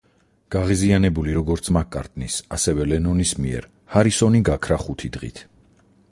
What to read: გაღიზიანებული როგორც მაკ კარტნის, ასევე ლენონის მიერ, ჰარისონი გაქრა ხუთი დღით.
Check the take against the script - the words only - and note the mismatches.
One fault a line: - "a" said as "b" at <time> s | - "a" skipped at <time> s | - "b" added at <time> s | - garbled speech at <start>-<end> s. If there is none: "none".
none